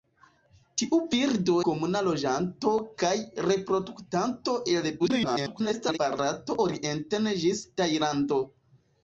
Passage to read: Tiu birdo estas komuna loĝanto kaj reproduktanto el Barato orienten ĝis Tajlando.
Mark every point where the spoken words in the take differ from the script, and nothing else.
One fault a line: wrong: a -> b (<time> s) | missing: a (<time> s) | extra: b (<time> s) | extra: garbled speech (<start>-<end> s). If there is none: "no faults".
missing: estas (1.6 s)
extra: garbled speech (5.0-6.0 s)